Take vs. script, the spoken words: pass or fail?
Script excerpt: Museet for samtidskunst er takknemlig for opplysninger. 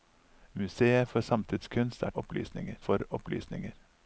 fail